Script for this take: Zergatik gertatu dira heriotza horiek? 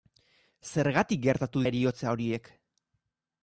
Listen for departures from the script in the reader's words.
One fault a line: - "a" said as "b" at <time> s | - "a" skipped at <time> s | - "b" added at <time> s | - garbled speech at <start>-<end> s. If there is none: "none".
- "dira" skipped at 1.6 s